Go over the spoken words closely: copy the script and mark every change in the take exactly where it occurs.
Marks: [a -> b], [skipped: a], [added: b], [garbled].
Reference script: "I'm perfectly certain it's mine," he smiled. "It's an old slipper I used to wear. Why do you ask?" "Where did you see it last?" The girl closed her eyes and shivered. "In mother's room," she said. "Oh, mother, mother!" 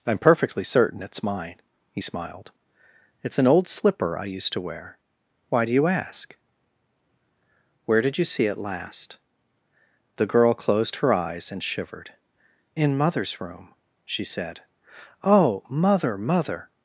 "I'm perfectly certain it's mine," he smiled. "It's an old slipper I used to wear. Why do you ask?" "Where did you see it last?" The girl closed her eyes and shivered. "In mother's room," she said. "Oh, mother, mother!"